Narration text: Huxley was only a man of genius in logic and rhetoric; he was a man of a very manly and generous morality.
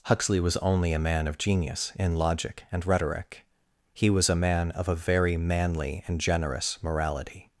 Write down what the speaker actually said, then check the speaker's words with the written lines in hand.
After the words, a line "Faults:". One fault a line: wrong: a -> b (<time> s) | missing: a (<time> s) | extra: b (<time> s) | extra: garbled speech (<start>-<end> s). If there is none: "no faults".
Huxley was only a man of genius in logic and rhetoric; he was a man of a very manly and generous morality.
Faults:
no faults